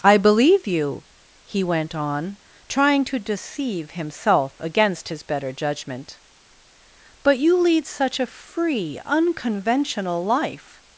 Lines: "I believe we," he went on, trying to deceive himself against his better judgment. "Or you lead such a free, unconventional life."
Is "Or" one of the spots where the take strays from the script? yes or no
yes